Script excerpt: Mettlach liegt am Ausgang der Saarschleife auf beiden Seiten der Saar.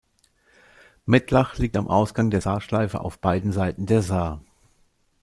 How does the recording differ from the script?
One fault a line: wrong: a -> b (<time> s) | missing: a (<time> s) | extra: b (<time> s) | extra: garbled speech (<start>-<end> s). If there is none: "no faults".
no faults